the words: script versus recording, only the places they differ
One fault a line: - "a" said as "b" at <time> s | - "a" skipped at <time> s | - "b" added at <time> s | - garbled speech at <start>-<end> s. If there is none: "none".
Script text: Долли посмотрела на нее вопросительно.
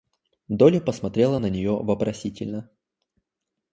none